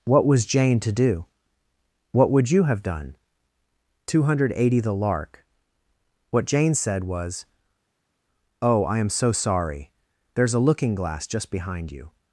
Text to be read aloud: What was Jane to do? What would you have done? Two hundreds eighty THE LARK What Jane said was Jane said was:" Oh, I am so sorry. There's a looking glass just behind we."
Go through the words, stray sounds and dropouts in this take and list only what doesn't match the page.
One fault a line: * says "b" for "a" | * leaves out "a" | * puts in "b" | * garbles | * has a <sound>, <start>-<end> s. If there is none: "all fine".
* says "hundred" for "hundreds"
* leaves out "Jane said was"
* says "you" for "we"